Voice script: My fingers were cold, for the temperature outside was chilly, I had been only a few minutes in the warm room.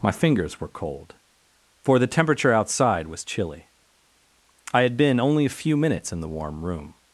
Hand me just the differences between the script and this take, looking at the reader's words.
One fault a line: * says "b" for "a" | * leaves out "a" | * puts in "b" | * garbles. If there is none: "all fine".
all fine